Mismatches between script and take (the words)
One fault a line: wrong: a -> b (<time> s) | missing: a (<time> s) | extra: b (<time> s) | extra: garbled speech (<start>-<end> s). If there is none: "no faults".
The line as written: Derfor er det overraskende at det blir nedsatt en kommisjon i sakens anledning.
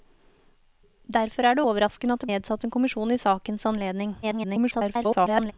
missing: blir (2.3 s)
extra: garbled speech (4.2-5.5 s)